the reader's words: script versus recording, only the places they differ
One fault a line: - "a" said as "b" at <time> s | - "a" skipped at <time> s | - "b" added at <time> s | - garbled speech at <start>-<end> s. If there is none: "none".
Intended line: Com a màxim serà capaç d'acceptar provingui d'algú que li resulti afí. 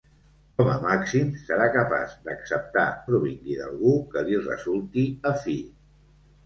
none